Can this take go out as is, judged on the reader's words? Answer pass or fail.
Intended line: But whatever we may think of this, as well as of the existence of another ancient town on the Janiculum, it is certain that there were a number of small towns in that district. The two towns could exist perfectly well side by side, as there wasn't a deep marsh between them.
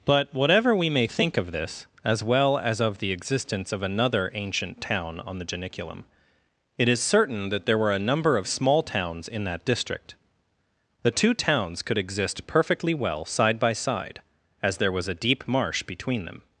fail